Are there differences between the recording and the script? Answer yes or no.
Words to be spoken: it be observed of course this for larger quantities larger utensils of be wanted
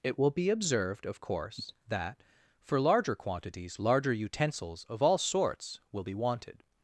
yes